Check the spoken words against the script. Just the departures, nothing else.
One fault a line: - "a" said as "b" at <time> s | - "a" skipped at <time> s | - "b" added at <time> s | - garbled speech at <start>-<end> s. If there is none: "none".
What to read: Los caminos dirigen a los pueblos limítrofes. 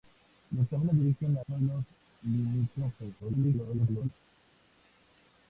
- "los" skipped at 1.4 s
- garbled speech at 3.2-4.1 s